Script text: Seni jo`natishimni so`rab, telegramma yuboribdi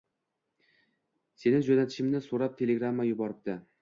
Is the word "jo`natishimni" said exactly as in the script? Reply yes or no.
yes